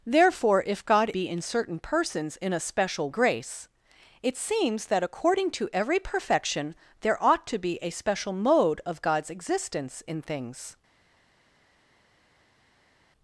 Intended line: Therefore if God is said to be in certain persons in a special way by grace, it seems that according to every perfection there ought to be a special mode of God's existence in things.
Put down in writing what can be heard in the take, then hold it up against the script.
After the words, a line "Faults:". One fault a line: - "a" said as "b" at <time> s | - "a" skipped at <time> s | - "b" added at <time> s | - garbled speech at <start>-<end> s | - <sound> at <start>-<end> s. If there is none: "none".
Therefore if God be in certain persons in a special grace, it seems that according to every perfection there ought to be a special mode of God's existence in things.
Faults:
- "is said to" skipped at 1.1 s
- "way by" skipped at 3.1 s